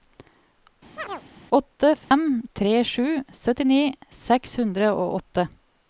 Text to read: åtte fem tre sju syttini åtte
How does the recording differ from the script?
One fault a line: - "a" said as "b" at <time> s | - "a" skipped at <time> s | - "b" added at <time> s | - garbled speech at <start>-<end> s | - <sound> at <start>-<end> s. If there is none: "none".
- chirp at 1.0-1.2 s
- dropout at 2.0-2.1 s
- "seks hundre og" added at 4.3 s